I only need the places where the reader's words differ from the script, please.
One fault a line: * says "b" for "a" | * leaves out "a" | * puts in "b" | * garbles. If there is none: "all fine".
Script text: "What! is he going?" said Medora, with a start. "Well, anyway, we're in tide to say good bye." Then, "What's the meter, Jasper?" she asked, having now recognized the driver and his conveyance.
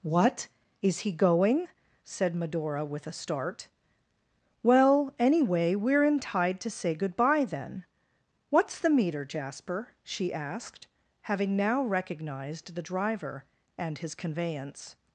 all fine